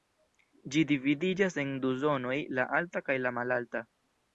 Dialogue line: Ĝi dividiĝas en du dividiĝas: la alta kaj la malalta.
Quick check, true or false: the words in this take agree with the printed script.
false